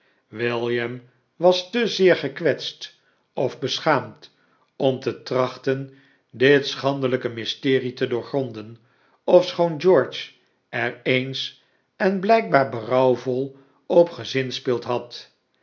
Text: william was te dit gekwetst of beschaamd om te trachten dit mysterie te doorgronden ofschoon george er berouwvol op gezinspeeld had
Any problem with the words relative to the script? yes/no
yes